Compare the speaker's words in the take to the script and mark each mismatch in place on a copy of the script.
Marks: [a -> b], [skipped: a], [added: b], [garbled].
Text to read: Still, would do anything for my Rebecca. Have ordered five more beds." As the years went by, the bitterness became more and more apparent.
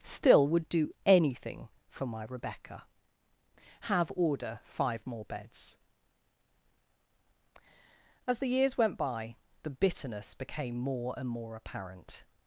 Still, would do anything for my Rebecca. Have [ordered -> order] five more beds." As the years went by, the bitterness became more and more apparent.